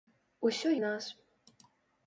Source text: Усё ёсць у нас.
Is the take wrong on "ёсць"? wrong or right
wrong